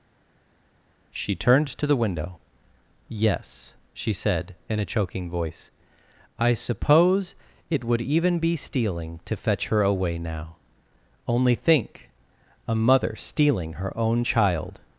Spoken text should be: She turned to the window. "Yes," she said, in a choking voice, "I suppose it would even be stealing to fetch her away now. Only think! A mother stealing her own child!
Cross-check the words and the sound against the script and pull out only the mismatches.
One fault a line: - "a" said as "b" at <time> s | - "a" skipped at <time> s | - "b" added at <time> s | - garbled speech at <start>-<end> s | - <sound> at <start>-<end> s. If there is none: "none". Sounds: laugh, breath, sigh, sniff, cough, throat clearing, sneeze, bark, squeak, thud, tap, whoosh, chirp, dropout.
none